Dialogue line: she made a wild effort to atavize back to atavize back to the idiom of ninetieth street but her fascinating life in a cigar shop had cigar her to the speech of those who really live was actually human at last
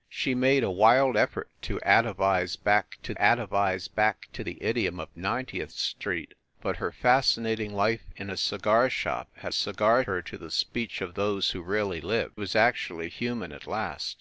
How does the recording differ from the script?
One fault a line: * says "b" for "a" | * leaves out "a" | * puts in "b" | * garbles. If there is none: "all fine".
all fine